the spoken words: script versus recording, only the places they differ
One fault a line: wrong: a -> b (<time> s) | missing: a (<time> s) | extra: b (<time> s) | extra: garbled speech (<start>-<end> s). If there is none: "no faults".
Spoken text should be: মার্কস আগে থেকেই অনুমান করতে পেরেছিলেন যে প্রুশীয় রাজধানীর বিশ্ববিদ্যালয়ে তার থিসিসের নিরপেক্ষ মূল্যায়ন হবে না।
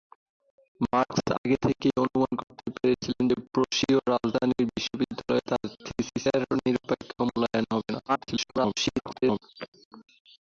extra: garbled speech (8.1-9.4 s)